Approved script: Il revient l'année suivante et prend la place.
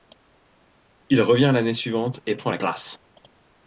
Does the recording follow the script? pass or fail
pass